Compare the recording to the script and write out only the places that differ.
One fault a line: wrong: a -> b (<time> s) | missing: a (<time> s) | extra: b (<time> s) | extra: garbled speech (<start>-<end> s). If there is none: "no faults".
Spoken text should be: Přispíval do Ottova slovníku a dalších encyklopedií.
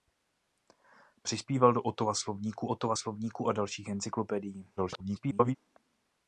extra: Ottova slovníku (2.6 s)
extra: garbled speech (4.8-5.6 s)